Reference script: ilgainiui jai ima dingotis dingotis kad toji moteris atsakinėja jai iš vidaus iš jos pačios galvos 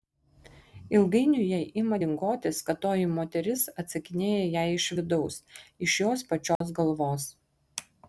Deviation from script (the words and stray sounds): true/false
true